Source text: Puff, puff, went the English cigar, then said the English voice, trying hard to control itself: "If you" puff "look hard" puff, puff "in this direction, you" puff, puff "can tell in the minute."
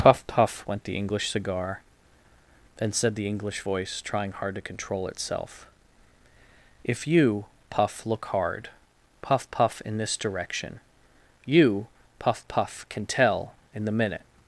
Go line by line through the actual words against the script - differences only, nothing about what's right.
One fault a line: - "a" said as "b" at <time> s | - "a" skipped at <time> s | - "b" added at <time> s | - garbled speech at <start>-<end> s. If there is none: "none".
none